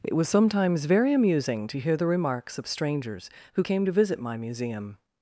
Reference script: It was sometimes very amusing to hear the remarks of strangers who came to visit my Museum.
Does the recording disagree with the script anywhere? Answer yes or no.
no